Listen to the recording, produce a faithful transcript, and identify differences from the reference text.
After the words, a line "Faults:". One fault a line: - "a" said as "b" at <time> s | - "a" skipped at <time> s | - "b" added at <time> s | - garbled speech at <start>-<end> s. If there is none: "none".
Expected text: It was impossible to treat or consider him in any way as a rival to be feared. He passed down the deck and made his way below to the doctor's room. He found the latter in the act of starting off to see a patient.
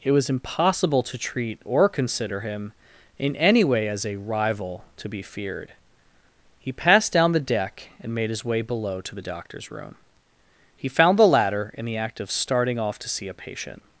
It was impossible to treat or consider him in any way as a rival to be feared. He passed down the deck and made his way below to the doctor's room. He found the latter in the act of starting off to see a patient.
Faults:
none